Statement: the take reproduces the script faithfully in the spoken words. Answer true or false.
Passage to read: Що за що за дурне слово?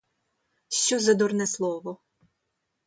false